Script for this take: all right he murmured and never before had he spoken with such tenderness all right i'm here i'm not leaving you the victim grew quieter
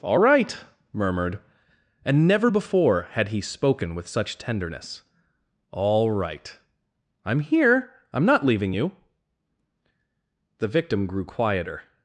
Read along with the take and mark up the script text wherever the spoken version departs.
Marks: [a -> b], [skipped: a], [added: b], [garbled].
all right [skipped: he] murmured and never before had he spoken with such tenderness all right i'm here i'm not leaving you the victim grew quieter